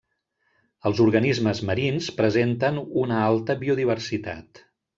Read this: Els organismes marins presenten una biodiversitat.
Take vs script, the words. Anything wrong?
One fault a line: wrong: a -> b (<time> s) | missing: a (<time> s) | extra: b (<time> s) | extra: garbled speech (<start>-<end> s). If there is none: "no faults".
extra: alta (3.3 s)